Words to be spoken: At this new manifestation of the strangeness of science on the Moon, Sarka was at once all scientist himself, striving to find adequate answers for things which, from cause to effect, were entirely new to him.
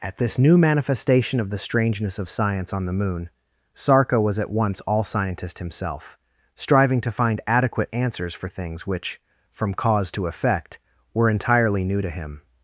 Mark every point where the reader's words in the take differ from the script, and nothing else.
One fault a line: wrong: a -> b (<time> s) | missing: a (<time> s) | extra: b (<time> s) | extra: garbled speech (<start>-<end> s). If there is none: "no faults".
no faults